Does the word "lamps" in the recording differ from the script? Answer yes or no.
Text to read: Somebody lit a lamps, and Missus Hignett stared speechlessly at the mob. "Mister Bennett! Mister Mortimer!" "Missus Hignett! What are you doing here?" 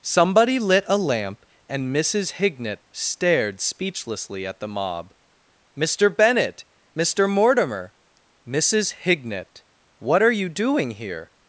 yes